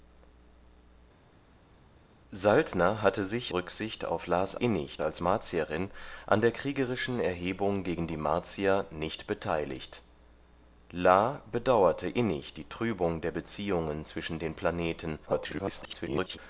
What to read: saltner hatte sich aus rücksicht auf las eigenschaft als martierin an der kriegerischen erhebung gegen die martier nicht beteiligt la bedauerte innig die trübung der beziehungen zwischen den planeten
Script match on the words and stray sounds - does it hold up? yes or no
no